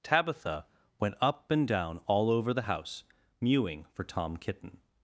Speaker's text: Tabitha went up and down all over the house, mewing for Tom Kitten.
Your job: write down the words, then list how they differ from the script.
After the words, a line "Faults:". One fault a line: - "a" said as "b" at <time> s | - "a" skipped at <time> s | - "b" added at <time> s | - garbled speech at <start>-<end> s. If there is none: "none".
Tabitha went up and down all over the house, mewing for Tom Kitten.
Faults:
none